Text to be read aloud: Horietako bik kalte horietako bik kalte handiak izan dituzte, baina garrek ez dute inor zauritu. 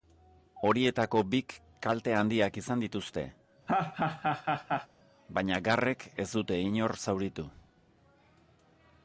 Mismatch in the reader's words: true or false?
true